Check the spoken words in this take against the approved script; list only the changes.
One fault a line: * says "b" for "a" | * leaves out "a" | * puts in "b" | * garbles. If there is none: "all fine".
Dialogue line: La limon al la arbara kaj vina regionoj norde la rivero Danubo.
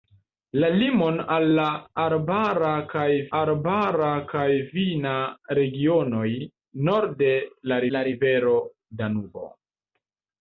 * puts in "arbara kaj"
* puts in "la"